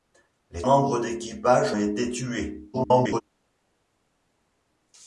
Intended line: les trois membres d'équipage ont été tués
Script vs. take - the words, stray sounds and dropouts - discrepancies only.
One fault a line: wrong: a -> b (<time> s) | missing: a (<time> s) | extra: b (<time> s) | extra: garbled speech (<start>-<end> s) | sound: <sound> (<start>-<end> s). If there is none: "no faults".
missing: trois (0.6 s)
missing: ont (1.7 s)
extra: garbled speech (2.7-3.2 s)